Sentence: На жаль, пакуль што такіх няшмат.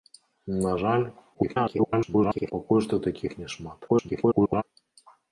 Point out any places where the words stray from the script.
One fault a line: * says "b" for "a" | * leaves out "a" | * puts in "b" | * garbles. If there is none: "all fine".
* garbles
* garbles